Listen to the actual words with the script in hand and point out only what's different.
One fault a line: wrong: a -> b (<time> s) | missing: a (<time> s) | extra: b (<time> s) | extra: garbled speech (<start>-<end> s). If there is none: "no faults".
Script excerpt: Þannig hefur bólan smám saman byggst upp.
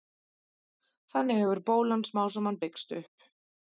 no faults